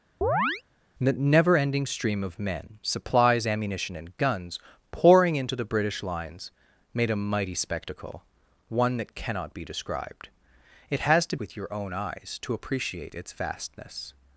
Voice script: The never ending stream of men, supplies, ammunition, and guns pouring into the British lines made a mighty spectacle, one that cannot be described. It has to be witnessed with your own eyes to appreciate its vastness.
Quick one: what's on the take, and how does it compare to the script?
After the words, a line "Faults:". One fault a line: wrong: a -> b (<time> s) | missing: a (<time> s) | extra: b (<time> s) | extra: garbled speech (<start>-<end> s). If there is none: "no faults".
The never ending stream of men, supplies, ammunition, and guns pouring into the British lines made a mighty spectacle, one that cannot be described. It has to with your own eyes to appreciate its vastness.
Faults:
missing: be witnessed (11.4 s)